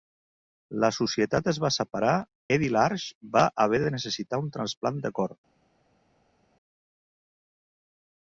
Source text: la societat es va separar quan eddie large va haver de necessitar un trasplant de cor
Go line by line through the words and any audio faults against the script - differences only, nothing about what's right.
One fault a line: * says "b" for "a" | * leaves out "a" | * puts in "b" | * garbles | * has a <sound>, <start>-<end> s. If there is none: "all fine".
* leaves out "quan"